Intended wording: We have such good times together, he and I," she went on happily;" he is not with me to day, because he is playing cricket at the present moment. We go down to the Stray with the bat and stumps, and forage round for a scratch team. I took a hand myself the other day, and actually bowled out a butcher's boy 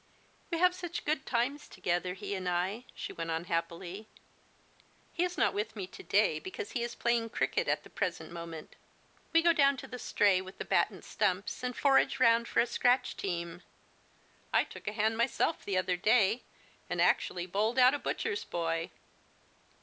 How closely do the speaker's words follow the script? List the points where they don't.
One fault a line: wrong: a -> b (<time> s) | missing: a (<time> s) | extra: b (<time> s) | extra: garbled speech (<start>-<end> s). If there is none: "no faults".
no faults